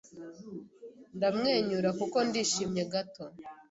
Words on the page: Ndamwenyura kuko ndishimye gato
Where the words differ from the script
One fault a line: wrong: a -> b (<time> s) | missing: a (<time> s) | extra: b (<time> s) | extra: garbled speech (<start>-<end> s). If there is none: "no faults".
no faults